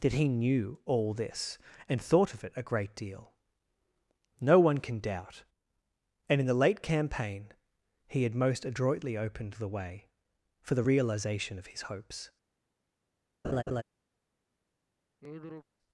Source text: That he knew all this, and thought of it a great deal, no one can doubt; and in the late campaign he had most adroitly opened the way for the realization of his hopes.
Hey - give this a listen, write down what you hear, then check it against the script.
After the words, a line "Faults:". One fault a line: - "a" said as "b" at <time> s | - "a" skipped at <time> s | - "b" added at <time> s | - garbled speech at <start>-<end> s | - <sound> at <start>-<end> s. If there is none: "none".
That he knew all this, and thought of it a great deal, no one can doubt; and in the late campaign he had most adroitly opened the way for the realization of his hopes.
Faults:
- laugh at 13.4-13.8 s
- sigh at 15.2-15.7 s